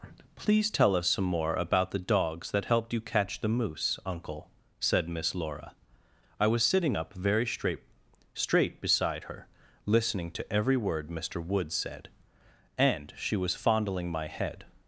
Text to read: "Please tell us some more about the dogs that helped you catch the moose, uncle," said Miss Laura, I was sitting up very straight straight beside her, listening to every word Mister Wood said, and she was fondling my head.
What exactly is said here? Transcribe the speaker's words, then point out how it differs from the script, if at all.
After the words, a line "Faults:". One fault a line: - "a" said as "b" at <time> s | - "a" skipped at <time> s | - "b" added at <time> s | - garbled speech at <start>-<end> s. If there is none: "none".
"Please tell us some more about the dogs that helped you catch the moose, uncle," said Miss Laura, I was sitting up very straight straight beside her, listening to every word Mister Wood said, and she was fondling my head.
Faults:
none